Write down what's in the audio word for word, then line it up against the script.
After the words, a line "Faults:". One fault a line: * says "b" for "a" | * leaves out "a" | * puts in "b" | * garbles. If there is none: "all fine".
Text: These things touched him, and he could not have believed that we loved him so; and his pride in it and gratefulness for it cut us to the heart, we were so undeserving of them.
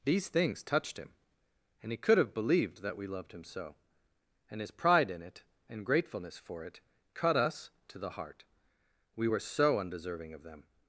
These things touched him, and he could have believed that we loved him so; and his pride in it and gratefulness for it cut us to the heart, we were so undeserving of them.
Faults:
* leaves out "not"